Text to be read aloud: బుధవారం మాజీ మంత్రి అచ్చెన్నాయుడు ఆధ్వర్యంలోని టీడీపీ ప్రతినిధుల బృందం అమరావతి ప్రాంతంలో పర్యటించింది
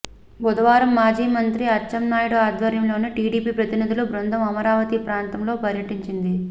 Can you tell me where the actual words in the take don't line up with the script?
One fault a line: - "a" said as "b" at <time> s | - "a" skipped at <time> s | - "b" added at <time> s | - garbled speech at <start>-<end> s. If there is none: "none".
none